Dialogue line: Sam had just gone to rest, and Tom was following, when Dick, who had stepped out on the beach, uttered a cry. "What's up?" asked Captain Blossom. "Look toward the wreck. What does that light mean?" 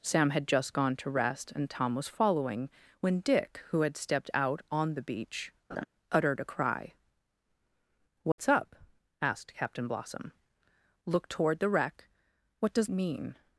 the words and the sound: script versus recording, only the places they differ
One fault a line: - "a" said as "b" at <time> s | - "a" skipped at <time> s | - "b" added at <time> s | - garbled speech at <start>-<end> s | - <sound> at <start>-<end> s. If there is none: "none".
- laugh at 5.7-5.9 s
- dropout at 8.3-8.4 s
- "that light" skipped at 12.9 s